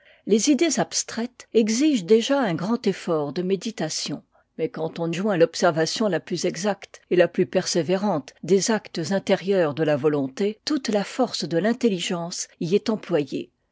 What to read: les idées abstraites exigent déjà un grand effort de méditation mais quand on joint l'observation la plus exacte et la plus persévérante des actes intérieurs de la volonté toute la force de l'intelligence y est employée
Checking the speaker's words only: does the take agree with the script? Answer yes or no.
yes